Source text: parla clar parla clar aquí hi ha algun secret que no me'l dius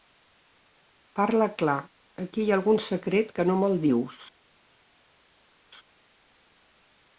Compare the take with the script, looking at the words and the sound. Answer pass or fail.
fail